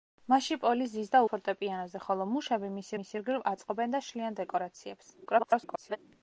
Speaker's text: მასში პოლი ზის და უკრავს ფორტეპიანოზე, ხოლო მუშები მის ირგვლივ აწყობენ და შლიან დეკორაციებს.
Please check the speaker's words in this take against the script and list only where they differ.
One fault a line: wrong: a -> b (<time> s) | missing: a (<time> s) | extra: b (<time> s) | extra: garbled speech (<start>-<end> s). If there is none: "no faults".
missing: უკრავს (1.2 s)
extra: მის (3.0 s)
extra: garbled speech (5.3-6.0 s)